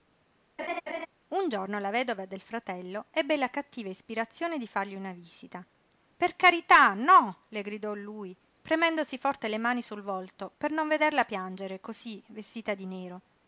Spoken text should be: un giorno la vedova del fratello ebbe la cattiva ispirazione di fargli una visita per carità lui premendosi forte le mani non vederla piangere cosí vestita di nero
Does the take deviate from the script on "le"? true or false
false